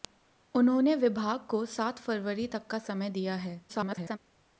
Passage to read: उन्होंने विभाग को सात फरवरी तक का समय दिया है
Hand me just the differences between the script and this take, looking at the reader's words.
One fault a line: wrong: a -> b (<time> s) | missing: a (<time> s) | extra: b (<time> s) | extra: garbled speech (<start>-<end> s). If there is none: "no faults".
extra: garbled speech (3.7-4.2 s)